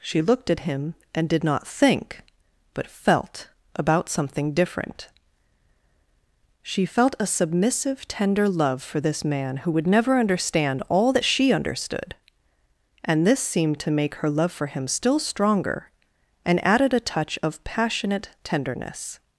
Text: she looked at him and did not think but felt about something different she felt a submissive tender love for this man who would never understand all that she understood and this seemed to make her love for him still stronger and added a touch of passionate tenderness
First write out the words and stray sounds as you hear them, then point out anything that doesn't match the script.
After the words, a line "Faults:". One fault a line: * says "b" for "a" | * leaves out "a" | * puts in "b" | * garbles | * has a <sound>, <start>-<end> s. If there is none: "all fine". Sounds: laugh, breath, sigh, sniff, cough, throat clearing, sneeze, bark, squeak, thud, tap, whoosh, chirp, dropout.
she looked at him and did not think but felt about something different she felt a submissive tender love for this man who would never understand all that she understood and this seemed to make her love for him still stronger and added a touch of passionate tenderness
Faults:
all fine